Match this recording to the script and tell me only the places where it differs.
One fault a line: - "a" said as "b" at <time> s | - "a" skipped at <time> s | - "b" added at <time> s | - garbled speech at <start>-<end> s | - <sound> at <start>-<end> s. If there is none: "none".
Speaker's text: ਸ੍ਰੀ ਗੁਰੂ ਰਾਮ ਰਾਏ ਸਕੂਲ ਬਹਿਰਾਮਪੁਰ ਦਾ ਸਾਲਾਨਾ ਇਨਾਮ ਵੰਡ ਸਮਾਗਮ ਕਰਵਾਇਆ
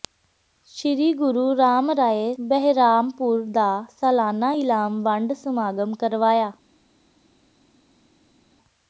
- "ਸਕੂਲ" skipped at 2.3 s